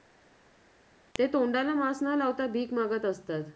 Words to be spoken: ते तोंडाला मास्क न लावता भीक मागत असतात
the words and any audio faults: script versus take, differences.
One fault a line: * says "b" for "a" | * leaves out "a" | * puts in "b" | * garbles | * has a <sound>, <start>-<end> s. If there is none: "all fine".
all fine